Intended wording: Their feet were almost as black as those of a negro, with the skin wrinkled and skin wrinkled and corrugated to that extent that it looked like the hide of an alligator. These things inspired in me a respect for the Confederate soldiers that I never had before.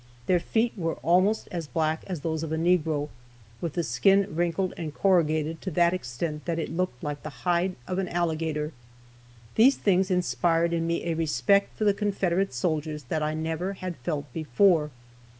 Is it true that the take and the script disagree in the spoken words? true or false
true